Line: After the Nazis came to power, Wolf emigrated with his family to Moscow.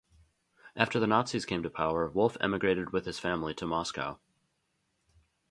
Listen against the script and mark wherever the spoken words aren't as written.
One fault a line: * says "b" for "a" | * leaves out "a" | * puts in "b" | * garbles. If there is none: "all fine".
all fine